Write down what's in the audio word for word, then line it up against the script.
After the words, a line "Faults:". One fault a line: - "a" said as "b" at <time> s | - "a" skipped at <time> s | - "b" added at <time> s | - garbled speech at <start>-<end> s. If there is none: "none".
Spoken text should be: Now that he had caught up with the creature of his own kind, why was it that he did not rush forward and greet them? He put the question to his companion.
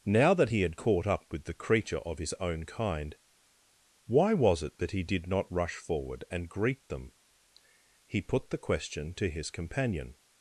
Now that he had caught up with the creature of his own kind, why was it that he did not rush forward and greet them? He put the question to his companion.
Faults:
none